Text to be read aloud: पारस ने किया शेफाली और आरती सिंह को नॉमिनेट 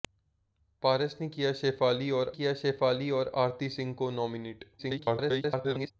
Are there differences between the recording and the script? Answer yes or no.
yes